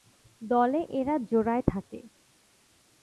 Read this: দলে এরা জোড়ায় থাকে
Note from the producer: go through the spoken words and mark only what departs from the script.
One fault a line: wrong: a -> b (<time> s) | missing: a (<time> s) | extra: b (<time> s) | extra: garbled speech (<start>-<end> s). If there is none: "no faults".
no faults